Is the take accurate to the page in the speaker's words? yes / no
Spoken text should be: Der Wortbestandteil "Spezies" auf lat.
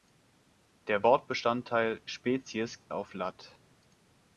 yes